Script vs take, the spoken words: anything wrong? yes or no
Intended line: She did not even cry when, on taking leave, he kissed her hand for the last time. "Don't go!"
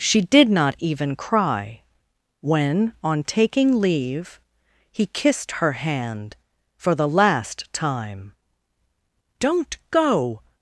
no